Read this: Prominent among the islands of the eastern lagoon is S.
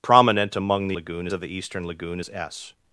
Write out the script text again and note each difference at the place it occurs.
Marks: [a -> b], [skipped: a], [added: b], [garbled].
Prominent among the [islands -> lagoon] of the eastern lagoon is S.